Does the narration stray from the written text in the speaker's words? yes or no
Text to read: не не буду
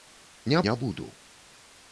no